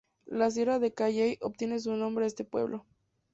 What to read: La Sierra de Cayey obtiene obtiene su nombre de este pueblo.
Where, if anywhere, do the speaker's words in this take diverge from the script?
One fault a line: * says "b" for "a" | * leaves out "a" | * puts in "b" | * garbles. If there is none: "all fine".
* leaves out "obtiene"